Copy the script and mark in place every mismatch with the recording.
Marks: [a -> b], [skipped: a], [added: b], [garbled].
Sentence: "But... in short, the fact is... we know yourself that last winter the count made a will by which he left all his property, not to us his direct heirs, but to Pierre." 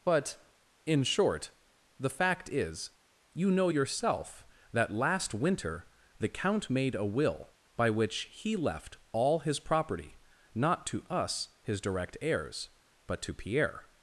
"But... in short, the fact is... [we -> you] know yourself that last winter the count made a will by which he left all his property, not to us his direct heirs, but to Pierre."